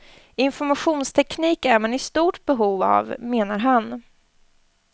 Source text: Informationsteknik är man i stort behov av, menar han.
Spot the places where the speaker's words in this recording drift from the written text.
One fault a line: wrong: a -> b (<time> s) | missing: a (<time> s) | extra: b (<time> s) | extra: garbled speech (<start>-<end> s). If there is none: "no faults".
no faults